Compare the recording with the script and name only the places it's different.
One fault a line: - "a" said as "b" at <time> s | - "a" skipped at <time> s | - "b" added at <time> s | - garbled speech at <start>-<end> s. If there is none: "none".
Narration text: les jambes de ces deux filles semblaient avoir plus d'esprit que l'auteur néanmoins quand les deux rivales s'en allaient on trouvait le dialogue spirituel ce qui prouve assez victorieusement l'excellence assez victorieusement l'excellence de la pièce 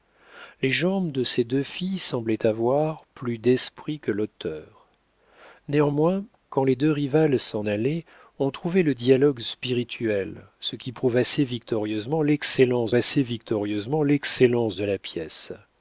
none